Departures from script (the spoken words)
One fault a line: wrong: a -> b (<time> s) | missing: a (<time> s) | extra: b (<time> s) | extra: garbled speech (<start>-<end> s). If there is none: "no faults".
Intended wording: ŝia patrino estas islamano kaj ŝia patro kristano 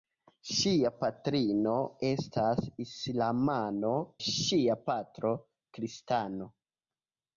missing: kaj (3.9 s)